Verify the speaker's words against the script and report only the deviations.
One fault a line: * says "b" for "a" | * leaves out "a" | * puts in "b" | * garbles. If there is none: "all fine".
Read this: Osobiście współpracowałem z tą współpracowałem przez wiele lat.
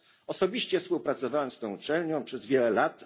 * says "uczelnią" for "współpracowałem"